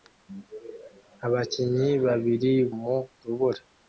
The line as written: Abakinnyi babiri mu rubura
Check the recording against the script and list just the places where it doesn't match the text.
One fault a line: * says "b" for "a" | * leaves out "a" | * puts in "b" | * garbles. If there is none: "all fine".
all fine